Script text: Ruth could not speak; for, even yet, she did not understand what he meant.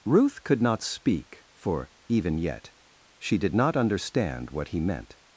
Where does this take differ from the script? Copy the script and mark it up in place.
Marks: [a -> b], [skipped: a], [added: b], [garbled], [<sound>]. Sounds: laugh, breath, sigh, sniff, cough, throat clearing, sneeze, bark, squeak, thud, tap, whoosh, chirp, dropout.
Ruth could not speak; for, even yet, she did not understand what he meant.